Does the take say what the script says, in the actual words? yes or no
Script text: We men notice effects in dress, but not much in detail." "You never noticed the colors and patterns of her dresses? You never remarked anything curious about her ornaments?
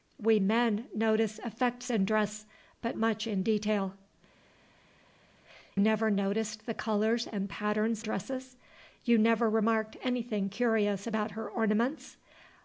no